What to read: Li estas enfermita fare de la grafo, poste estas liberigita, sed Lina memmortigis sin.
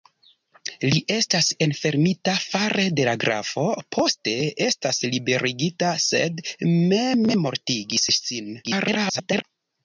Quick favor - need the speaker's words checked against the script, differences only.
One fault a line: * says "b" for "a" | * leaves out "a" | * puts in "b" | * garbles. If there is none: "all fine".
* leaves out "Lina"
* garbles